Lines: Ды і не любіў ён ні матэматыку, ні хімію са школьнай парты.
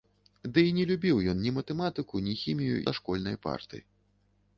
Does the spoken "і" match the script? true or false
true